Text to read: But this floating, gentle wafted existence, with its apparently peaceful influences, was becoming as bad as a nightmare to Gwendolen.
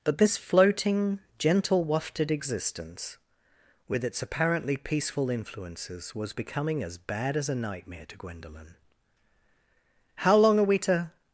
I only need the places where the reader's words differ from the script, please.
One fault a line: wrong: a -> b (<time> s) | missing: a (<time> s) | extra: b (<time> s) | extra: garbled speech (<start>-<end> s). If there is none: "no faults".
extra: How long are we to (10.2 s)